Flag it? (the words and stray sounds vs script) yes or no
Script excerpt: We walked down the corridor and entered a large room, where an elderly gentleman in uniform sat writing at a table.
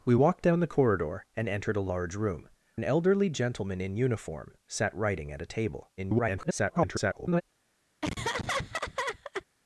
yes